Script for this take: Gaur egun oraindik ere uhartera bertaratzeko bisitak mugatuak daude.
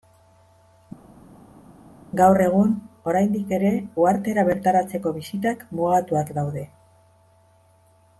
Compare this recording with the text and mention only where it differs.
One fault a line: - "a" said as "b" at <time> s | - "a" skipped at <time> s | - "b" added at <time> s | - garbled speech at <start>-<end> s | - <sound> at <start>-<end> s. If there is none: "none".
none